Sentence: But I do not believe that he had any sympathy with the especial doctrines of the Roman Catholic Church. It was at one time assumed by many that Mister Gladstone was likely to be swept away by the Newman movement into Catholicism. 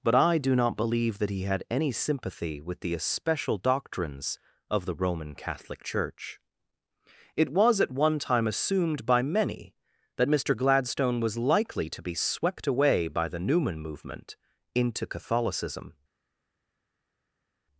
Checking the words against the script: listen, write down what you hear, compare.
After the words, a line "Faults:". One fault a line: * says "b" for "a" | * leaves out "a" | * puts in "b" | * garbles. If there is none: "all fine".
But I do not believe that he had any sympathy with the especial doctrines of the Roman Catholic Church. It was at one time assumed by many that Mister Gladstone was likely to be swept away by the Newman movement into Catholicism.
Faults:
all fine